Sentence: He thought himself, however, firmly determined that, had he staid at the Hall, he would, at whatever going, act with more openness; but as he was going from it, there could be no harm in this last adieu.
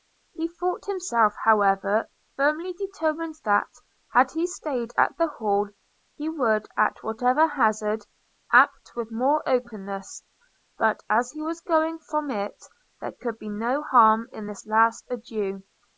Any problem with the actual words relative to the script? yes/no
yes